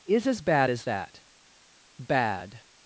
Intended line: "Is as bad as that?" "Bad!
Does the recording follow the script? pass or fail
pass